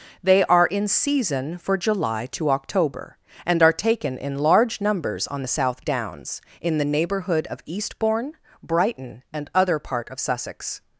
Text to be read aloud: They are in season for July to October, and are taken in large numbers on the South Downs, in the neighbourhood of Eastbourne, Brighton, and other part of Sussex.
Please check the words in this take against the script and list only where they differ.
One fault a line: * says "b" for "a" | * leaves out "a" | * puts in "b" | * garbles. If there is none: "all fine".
all fine